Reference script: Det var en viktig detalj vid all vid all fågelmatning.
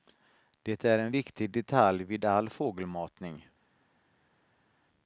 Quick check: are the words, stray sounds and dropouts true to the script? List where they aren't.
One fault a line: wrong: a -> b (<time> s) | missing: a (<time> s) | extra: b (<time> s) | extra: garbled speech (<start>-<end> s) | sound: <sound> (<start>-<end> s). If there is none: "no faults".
wrong: var -> är (0.8 s)
missing: vid all (2.5 s)